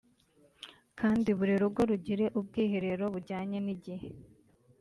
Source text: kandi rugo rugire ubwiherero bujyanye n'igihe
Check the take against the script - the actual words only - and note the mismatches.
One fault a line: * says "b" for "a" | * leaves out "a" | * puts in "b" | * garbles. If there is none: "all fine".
* puts in "buri"